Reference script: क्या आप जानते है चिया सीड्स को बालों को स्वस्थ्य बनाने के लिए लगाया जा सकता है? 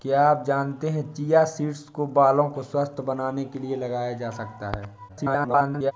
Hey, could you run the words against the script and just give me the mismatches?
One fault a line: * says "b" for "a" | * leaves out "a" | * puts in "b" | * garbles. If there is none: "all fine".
* garbles